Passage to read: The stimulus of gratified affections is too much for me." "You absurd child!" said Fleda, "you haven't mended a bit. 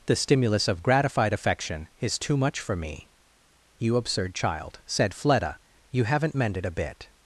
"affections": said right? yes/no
no